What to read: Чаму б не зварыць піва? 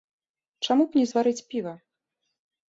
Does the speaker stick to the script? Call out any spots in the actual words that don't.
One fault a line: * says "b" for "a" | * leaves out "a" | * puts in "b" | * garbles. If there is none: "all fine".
all fine